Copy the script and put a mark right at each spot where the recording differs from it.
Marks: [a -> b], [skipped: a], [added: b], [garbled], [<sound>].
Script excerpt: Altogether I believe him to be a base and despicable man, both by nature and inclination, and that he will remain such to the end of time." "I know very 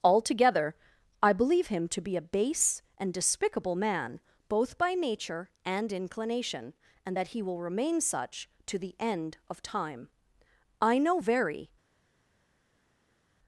Altogether I believe him to be a base and despicable man, both by nature and inclination, and that he will remain such to the end of time." "I know very